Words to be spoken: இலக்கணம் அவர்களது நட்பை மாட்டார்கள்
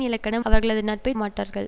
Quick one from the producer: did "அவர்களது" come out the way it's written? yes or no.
yes